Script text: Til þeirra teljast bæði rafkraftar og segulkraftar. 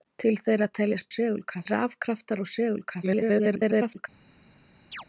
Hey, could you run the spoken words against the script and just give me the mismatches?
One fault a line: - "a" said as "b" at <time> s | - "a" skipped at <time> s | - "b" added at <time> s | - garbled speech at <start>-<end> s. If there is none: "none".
- "bæði" said as "segulkraftar" at 1.1 s
- garbled speech at 3.0-4.1 s